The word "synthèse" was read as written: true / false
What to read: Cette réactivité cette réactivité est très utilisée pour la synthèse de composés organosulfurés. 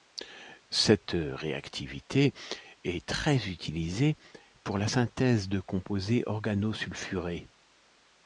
true